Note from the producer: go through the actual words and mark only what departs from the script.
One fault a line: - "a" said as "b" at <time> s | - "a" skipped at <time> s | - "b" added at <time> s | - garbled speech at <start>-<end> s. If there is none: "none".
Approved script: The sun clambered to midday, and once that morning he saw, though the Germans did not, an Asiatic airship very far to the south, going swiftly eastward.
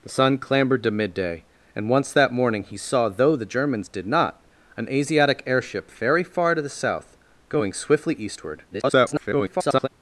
- garbled speech at 8.7-9.9 s